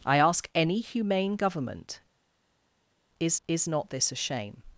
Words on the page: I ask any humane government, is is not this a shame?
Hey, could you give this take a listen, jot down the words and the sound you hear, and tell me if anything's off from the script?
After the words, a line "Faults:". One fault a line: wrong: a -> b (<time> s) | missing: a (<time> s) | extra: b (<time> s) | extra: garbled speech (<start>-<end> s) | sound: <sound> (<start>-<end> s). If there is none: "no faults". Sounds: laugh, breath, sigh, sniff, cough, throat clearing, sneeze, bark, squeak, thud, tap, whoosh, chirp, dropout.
I ask any humane government, is is not this a shame?
Faults:
no faults